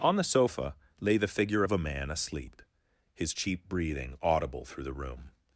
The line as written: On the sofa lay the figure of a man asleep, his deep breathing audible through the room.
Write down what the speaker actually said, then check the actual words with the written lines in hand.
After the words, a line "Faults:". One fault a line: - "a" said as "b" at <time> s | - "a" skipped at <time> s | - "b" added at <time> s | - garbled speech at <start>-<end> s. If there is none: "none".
On the sofa lay the figure of a man asleep, his cheap breathing audible through the room.
Faults:
- "deep" said as "cheap" at 3.3 s